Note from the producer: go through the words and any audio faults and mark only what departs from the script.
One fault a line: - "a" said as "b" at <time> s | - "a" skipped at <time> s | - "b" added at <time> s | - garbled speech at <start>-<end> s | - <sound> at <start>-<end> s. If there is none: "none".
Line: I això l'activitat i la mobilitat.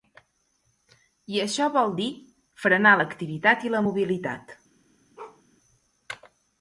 - "vol dir frenar" added at 1.8 s
- bark at 5.2-5.4 s